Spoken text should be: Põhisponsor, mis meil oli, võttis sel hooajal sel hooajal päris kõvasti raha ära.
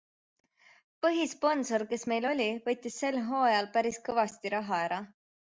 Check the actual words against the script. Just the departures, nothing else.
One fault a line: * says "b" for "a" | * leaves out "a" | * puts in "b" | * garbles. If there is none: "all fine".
* says "kes" for "mis"
* leaves out "sel hooajal"